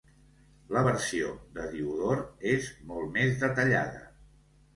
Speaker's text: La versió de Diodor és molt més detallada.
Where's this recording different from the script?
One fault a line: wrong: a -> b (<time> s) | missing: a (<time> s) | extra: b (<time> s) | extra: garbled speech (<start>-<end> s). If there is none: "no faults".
no faults